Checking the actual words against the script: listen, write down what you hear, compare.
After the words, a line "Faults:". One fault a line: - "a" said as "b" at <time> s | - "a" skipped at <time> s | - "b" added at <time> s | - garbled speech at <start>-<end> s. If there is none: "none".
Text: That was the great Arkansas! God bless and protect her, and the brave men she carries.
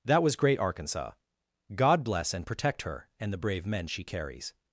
That was great Arkansas! God bless and protect her, and the brave men she carries.
Faults:
- "the" skipped at 0.3 s